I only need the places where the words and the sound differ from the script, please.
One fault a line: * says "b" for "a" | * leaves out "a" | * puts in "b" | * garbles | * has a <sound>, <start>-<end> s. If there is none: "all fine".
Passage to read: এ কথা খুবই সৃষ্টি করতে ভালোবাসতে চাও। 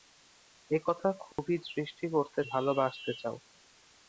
* has a dropout, 1.3-1.4 s